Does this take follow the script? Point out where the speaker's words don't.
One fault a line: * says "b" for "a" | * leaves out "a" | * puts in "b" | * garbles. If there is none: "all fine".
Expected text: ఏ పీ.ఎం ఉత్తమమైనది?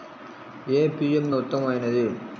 all fine